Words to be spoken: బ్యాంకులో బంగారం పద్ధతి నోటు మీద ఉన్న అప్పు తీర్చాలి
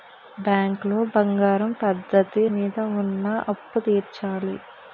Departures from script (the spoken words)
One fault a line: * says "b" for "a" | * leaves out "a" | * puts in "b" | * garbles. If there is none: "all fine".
* leaves out "నోటు"